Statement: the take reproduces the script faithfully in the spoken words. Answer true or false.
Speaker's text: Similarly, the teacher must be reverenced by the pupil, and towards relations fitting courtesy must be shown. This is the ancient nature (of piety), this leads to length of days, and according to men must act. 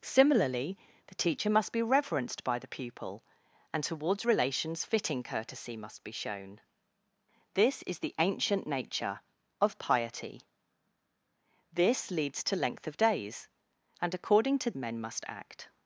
true